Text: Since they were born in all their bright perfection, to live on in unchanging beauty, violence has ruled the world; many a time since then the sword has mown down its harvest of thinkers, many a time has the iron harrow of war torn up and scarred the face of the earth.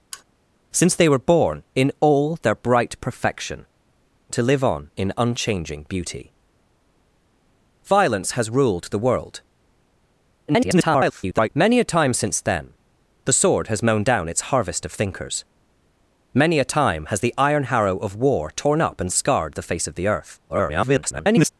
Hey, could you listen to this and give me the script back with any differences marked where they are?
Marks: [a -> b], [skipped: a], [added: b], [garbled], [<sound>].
[sigh] Since they were born in all their bright perfection, to live on in unchanging beauty, violence has ruled the world; [garbled] many a time since then the sword has mown down its harvest of thinkers, many a time has the iron harrow of war torn up and scarred the face of the earth. [garbled]